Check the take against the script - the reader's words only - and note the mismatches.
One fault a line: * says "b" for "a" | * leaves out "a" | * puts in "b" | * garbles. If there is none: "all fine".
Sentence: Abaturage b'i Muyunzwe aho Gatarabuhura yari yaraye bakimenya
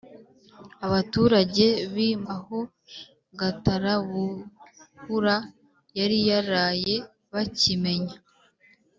* leaves out "Muyunzwe"